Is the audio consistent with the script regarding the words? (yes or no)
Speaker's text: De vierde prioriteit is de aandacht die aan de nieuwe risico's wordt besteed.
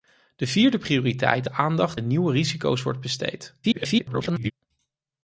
no